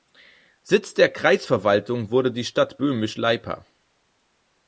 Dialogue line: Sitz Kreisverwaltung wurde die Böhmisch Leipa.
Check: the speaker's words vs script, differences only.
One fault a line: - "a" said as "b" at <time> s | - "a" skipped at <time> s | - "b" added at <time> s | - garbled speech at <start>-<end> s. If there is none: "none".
- "der" added at 0.9 s
- "Stadt" added at 2.4 s